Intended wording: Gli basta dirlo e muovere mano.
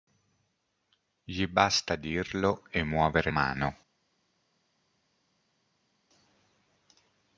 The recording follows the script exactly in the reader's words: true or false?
true